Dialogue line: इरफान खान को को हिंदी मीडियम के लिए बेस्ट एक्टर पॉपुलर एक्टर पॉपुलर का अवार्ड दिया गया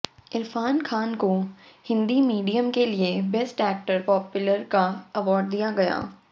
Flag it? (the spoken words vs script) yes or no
yes